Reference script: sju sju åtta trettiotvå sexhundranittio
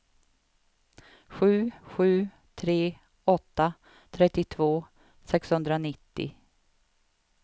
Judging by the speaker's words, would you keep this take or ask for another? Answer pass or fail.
fail